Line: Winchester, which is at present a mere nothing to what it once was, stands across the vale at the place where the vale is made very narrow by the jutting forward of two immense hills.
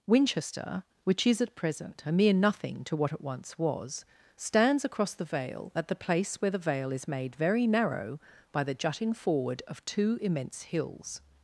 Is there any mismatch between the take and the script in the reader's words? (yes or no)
no